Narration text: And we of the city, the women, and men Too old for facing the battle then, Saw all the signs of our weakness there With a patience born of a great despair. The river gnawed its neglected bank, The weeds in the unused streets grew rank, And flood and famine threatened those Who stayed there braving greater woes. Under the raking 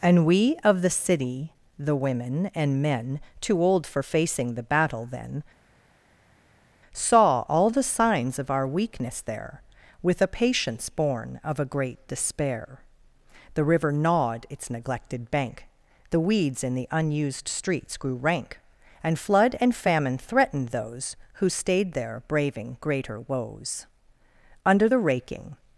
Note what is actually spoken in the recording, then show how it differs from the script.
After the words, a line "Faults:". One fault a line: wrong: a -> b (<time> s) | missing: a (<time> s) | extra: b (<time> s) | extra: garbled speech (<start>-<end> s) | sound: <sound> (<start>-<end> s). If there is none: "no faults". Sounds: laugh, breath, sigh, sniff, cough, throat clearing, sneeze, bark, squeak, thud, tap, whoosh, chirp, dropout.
And we of the city, the women, and men Too old for facing the battle then, Saw all the signs of our weakness there With a patience born of a great despair. The river gnawed its neglected bank, The weeds in the unused streets grew rank, And flood and famine threatened those Who stayed there braving greater woes. Under the raking
Faults:
no faults